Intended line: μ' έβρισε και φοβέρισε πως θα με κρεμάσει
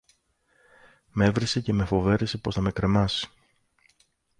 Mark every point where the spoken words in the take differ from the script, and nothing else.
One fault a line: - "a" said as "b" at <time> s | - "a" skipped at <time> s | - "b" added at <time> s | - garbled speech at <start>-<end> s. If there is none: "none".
- "με" added at 1.7 s